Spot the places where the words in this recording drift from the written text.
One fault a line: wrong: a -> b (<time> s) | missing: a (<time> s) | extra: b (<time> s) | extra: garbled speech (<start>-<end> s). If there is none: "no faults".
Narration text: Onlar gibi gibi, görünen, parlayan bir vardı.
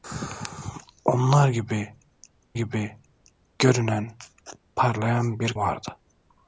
no faults